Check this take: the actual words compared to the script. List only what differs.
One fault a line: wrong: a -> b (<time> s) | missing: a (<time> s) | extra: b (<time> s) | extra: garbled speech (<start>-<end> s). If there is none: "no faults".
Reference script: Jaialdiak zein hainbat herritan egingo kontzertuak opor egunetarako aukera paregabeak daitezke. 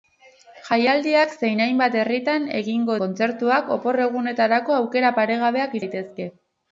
no faults